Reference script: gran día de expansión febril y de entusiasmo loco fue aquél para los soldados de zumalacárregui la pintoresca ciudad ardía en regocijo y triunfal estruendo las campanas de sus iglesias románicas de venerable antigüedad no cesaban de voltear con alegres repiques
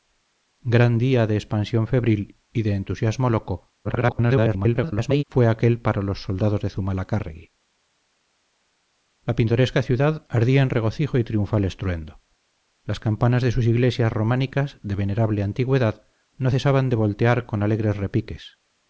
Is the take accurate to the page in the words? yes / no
no